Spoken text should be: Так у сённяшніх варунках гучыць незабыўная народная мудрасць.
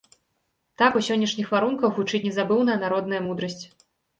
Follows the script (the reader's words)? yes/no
yes